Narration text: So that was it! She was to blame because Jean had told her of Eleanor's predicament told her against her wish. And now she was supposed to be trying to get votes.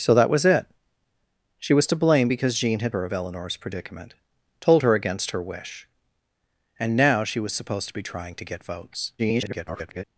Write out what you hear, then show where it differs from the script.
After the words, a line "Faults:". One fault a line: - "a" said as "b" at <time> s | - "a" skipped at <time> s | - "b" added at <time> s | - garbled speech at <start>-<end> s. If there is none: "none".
So that was it! She was to blame because Jean had her of Eleanor's predicament told her against her wish. And now she was supposed to be trying to get votes. [garbled]
Faults:
- "told" skipped at 2.9 s
- garbled speech at 9.2-10.0 s